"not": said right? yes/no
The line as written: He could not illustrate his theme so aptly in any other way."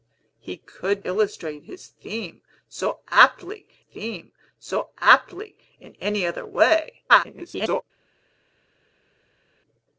no